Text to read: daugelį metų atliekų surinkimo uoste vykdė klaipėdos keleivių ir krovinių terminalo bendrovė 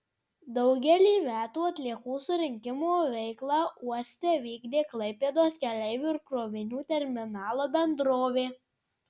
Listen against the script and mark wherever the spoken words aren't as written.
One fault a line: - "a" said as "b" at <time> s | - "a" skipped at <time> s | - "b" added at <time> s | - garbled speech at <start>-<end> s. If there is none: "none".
- "veiklą" added at 3.2 s